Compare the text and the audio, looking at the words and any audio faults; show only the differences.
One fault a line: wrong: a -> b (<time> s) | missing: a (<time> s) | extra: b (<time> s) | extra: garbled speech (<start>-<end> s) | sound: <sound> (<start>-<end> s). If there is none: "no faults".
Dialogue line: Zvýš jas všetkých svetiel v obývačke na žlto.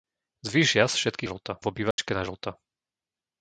wrong: svetiel -> žlto (1.2 s)
sound: dropout (1.9-2.0 s)